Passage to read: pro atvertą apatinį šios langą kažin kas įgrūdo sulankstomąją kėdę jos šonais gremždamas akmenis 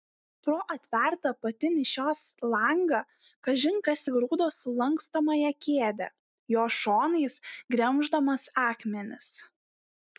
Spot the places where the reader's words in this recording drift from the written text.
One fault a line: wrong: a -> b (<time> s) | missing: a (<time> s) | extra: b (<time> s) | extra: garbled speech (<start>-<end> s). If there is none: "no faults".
no faults